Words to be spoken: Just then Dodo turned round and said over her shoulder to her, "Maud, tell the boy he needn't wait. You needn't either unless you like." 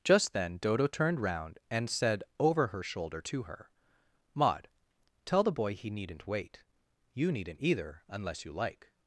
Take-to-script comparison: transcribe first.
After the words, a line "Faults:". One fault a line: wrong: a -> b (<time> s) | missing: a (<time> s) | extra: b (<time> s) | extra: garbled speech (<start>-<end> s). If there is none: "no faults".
Just then Dodo turned round and said over her shoulder to her, "Maud, tell the boy he needn't wait. You needn't either unless you like."
Faults:
no faults